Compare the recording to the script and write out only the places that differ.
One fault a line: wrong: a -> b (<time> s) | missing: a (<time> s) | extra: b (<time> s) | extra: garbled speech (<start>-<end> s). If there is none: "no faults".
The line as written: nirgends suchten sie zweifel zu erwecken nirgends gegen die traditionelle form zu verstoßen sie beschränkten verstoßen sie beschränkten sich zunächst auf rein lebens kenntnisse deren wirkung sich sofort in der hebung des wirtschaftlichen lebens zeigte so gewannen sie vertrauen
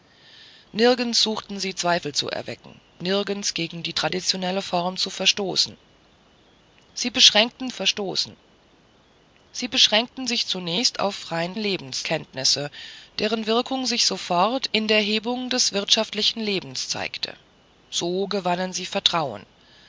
no faults